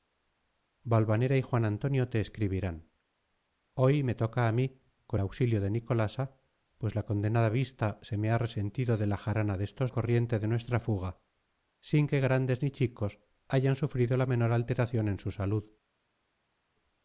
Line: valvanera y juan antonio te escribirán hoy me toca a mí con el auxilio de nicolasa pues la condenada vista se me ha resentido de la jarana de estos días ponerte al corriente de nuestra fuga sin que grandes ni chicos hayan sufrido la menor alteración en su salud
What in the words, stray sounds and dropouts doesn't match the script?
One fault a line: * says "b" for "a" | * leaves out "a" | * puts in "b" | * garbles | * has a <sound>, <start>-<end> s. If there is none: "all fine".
* leaves out "el"
* leaves out "días ponerte al"